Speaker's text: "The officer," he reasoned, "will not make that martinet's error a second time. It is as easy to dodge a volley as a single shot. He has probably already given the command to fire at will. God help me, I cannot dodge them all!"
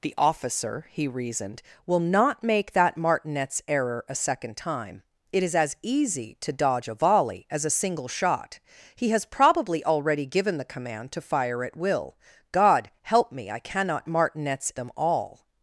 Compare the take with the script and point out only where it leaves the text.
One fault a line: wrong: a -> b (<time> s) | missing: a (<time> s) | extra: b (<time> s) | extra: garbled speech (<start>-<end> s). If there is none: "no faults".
wrong: dodge -> martinet's (14.1 s)